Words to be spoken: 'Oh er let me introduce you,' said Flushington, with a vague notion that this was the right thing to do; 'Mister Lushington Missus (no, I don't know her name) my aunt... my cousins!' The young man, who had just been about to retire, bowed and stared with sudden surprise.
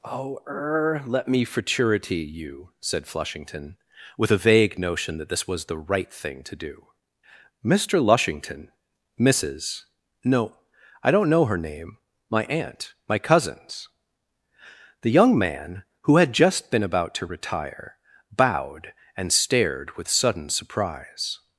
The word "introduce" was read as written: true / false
false